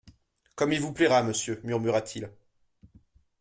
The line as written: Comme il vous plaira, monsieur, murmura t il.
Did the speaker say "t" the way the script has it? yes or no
yes